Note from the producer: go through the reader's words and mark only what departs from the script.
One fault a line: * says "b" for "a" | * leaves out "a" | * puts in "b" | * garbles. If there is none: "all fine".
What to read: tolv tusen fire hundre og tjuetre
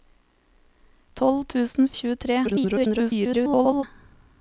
* leaves out "fire hundre"
* garbles